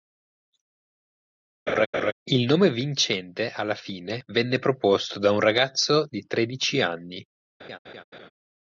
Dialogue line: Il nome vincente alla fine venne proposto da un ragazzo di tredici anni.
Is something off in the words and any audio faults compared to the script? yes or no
yes